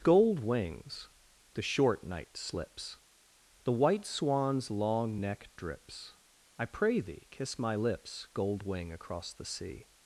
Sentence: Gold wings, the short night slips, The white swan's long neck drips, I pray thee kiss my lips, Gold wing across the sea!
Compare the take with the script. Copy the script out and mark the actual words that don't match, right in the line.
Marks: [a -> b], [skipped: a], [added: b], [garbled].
Gold wings, the short night slips, The white swan's long neck drips, I pray thee kiss my lips, Gold wing across the sea!